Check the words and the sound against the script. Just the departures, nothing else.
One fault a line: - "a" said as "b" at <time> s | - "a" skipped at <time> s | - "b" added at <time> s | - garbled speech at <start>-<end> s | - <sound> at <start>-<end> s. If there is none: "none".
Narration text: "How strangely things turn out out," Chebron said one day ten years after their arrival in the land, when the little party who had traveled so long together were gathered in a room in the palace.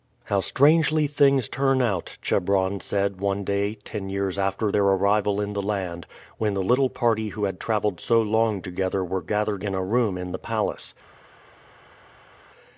- "out" skipped at 2.2 s